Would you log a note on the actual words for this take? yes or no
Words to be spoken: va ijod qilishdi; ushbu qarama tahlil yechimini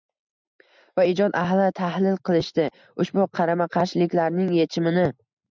yes